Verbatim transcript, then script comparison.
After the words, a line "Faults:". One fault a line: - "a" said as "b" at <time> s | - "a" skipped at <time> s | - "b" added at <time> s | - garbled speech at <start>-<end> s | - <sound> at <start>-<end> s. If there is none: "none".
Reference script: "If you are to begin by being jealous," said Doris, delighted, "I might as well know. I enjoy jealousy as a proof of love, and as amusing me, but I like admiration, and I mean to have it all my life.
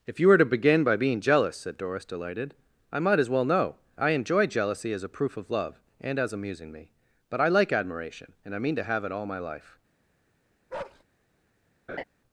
"If you were to begin by being jealous," said Doris, delighted, "I might as well know. I enjoy jealousy as a proof of love, and as amusing me, but I like admiration, and I mean to have it all my life.
Faults:
- "are" said as "were" at 0.3 s
- bark at 10.7-11.0 s
- laugh at 11.9-12.0 s